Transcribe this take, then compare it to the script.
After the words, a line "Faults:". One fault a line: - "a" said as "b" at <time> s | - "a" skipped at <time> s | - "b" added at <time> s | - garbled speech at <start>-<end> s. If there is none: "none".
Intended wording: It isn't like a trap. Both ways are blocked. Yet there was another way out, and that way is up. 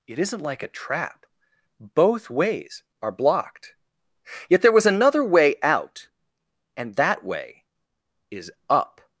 It isn't like a trap. Both ways are blocked. Yet there was another way out, and that way is up.
Faults:
none